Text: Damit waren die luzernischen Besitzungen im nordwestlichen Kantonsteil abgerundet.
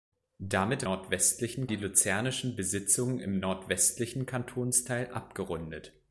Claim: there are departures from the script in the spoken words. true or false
true